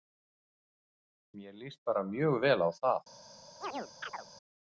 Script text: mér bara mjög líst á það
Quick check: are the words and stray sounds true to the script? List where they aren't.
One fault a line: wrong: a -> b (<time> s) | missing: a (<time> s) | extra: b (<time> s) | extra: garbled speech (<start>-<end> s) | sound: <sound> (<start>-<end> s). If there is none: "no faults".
extra: líst (1.5 s)
wrong: líst -> vel (2.4 s)
sound: chirp (3.6-4.3 s)